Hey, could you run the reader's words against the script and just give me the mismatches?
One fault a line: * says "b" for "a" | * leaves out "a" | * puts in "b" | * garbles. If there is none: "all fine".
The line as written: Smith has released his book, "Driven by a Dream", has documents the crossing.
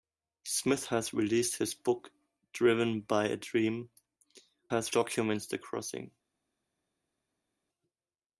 all fine